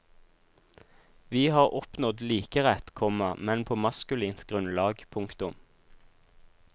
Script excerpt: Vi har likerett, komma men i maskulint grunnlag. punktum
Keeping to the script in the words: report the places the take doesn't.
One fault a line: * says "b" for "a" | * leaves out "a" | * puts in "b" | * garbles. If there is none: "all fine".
* puts in "oppnådd"
* says "på" for "i"